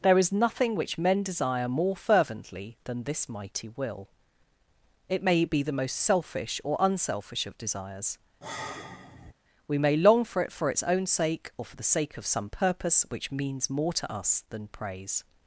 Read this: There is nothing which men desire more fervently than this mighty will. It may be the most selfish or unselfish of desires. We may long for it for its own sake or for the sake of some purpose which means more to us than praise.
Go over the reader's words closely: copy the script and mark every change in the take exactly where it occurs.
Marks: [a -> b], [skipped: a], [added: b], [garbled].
There is nothing which men desire more fervently than this mighty will. It may be the most selfish or unselfish of desires. We may long for it for its own sake or for the sake of some purpose which means more to us than praise.